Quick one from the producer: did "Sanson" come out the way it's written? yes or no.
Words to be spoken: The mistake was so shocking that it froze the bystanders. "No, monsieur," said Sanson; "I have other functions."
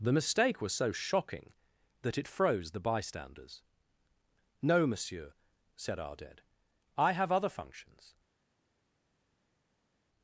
no